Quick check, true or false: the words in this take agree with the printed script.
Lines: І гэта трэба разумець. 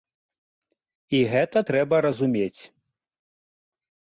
true